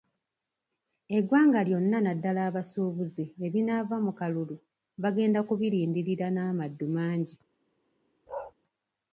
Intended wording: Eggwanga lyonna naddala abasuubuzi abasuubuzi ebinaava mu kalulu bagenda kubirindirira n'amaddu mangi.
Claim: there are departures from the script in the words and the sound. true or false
true